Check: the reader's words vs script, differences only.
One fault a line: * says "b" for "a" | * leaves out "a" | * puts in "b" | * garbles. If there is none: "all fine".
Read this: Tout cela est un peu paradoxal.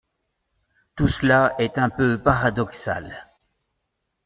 all fine